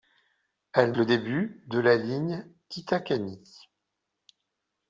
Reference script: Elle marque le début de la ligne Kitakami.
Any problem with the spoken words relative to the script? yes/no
yes